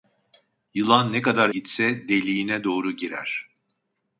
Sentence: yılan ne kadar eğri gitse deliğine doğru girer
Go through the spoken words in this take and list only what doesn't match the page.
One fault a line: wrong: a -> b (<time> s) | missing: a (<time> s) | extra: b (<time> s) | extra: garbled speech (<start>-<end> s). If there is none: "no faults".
missing: eğri (1.5 s)